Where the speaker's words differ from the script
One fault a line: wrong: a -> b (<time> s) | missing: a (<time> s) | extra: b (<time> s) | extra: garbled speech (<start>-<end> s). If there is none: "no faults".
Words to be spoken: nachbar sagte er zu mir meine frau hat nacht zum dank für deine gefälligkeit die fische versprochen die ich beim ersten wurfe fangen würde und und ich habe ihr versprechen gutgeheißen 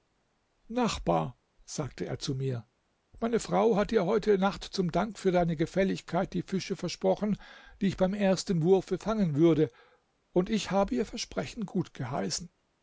extra: dir heute (3.9 s)
missing: und (10.5 s)